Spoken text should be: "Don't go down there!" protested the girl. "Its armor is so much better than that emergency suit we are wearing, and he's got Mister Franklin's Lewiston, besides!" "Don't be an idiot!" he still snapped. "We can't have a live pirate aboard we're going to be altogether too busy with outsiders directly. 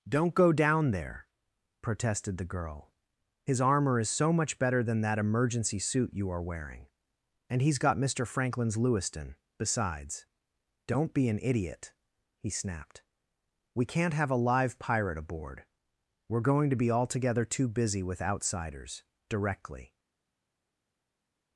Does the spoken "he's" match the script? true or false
true